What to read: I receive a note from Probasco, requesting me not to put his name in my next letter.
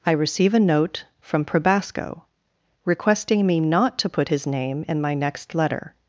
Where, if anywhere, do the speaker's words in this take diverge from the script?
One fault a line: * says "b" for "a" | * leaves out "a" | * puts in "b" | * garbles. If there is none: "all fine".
all fine